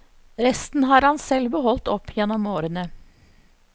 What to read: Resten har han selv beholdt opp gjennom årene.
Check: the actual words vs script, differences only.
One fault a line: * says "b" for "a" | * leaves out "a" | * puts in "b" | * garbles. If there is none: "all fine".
all fine